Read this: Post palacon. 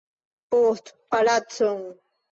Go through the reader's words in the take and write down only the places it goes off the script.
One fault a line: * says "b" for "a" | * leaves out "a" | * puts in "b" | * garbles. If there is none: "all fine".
all fine